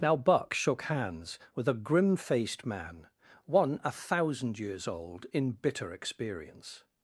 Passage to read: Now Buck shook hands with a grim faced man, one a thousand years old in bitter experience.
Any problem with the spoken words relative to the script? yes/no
no